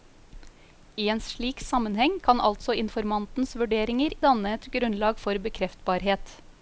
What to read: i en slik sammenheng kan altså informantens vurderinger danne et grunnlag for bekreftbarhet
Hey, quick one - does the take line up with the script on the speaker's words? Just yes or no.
yes